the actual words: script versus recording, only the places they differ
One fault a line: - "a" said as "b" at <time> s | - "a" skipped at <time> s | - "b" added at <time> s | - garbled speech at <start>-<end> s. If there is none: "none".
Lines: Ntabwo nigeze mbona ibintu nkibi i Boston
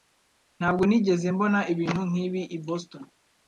none